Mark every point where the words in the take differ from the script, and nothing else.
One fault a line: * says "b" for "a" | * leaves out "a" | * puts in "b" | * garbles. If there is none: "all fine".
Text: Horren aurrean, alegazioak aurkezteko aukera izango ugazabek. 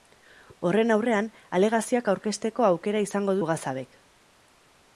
all fine